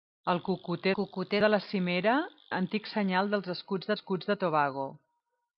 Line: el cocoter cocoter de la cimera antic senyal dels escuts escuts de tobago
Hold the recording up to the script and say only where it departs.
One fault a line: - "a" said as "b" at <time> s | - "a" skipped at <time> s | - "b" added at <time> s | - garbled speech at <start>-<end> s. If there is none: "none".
none